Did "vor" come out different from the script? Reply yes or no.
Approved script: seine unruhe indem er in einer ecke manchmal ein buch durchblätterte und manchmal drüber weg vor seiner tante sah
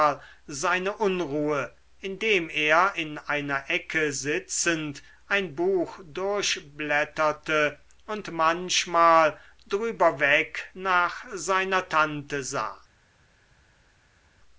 yes